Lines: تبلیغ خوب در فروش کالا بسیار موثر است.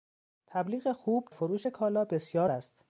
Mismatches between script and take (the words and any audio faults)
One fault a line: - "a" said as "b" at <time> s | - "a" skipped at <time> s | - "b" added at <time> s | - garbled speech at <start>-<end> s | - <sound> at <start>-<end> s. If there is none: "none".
- "در" skipped at 1.3 s
- "موثر" skipped at 2.5 s